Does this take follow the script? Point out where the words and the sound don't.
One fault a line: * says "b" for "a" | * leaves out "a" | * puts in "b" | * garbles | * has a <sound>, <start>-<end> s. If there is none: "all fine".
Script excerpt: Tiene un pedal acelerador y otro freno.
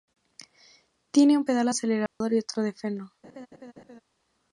* has a dropout, 2.1-2.2 s
* puts in "de"
* has a laugh, 3.2-4.0 s